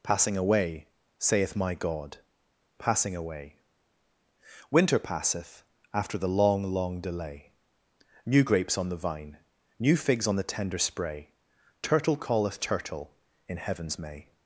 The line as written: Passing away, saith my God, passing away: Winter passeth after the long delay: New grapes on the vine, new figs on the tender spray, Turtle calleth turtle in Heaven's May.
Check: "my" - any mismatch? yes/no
no